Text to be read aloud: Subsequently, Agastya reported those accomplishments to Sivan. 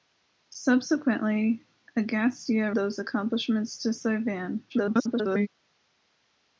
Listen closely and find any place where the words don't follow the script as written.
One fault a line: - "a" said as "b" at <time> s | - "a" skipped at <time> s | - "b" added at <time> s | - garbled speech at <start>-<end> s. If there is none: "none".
- "reported" skipped at 2.7 s
- garbled speech at 4.7-5.5 s